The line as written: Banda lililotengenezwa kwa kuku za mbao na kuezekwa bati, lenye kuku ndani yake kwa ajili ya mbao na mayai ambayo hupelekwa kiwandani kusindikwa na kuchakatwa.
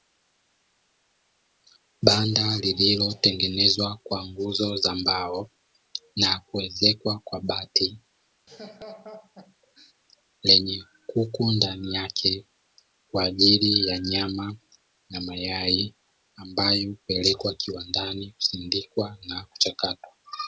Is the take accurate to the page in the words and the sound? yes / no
no